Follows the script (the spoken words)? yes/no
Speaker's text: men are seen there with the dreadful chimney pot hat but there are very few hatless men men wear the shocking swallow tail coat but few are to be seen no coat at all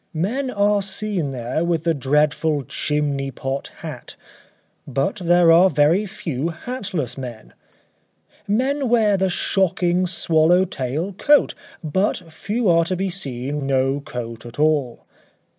yes